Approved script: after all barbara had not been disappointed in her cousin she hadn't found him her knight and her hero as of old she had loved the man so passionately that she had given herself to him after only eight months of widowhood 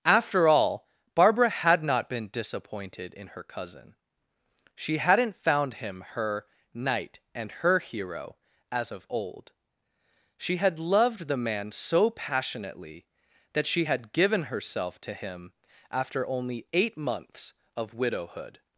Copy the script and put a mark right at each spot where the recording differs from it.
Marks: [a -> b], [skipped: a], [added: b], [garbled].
after all barbara had not been disappointed in her cousin she hadn't found him her knight and her hero as of old she had loved the man so passionately that she had given herself to him after only eight months of widowhood